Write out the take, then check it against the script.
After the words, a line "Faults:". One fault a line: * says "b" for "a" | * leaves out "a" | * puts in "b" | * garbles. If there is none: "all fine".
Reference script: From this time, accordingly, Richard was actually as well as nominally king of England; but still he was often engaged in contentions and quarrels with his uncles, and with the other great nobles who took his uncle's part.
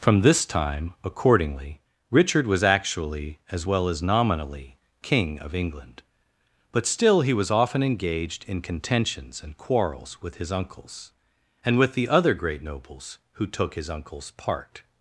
From this time, accordingly, Richard was actually as well as nominally king of England; but still he was often engaged in contentions and quarrels with his uncles, and with the other great nobles who took his uncle's part.
Faults:
all fine